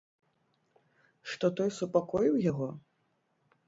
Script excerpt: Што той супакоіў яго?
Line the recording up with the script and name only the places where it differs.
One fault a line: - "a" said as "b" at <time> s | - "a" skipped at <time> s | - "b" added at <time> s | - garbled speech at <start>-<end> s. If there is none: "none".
none